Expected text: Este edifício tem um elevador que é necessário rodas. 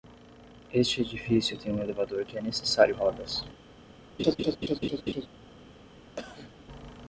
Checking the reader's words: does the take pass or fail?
pass